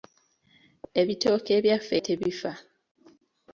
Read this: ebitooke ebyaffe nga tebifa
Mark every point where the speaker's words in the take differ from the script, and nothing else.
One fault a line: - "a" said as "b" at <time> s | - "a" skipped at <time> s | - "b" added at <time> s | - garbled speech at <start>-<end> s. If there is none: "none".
- "nga" skipped at 1.9 s